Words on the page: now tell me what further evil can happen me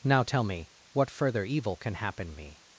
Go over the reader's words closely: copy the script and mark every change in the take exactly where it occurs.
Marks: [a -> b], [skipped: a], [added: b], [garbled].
now tell me what further evil can happen me